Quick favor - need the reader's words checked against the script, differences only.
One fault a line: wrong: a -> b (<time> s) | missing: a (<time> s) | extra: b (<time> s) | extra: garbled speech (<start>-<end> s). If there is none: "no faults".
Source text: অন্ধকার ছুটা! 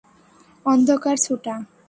no faults